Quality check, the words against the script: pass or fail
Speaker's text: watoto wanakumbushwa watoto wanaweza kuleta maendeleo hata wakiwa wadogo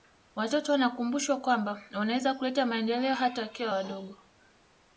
fail